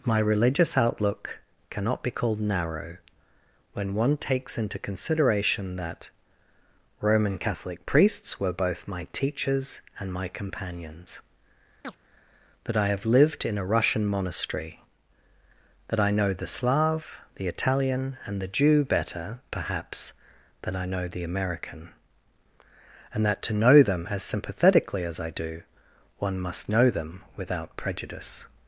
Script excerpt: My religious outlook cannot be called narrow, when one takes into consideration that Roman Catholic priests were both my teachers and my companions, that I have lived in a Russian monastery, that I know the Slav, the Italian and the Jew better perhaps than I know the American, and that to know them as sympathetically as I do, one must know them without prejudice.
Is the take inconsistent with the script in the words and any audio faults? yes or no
yes